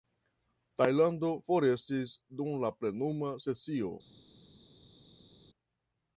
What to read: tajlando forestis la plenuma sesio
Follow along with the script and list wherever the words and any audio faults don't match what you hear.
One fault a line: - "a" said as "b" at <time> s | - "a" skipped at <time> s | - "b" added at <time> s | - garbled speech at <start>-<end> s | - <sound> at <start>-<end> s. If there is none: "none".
- "dum" added at 2.4 s